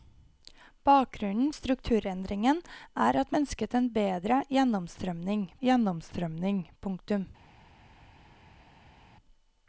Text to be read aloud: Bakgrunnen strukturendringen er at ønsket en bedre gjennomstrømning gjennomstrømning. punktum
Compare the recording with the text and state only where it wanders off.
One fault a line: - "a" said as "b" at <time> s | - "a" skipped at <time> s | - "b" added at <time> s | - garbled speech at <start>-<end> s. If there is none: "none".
none